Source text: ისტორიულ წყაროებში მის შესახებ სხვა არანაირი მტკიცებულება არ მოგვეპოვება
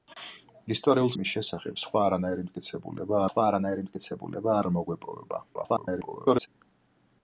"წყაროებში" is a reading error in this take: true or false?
true